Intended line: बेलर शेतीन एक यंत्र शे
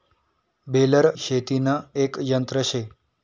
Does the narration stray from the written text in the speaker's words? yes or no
no